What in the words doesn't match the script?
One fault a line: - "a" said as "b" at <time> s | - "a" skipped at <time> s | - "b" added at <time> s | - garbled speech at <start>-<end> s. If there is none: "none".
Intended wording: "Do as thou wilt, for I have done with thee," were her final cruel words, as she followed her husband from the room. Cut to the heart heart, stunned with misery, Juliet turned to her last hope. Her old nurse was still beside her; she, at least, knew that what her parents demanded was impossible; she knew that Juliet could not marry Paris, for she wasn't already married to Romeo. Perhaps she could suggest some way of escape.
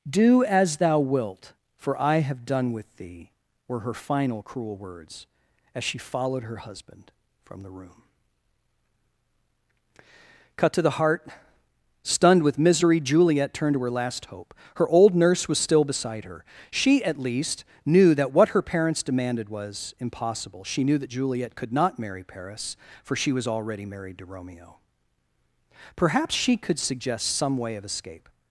- "heart" skipped at 11.3 s
- "wasn't" said as "was" at 23.3 s